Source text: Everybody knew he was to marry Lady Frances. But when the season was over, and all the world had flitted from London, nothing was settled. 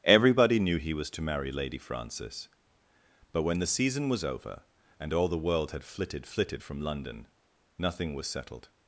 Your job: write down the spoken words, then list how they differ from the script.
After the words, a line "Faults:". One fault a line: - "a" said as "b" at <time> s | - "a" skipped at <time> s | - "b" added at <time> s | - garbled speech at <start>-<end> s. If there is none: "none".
Everybody knew he was to marry Lady Frances. But when the season was over, and all the world had flitted flitted from London, nothing was settled.
Faults:
- "flitted" added at 6.2 s